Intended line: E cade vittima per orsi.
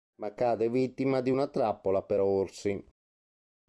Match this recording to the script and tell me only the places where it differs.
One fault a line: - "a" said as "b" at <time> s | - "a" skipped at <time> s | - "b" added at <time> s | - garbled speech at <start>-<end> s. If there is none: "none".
- "E" said as "Ma" at 0.2 s
- "di una trappola" added at 1.2 s